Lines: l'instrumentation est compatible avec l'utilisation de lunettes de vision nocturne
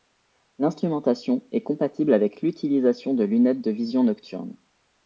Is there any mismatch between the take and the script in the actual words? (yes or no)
no